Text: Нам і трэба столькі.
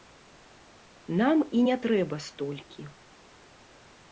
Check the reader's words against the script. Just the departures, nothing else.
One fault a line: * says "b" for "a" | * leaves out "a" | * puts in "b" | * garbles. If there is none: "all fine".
* puts in "не"